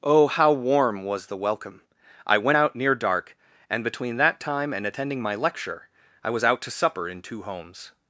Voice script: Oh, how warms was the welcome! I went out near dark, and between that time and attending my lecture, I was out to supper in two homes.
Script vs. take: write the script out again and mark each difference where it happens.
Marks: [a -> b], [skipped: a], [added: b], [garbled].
Oh, how [warms -> warm] was the welcome! I went out near dark, and between that time and attending my lecture, I was out to supper in two homes.